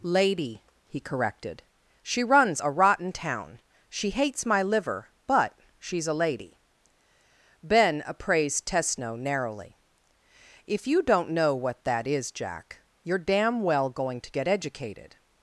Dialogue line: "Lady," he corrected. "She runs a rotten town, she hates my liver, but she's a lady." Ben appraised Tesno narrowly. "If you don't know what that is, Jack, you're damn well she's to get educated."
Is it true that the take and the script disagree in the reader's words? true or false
true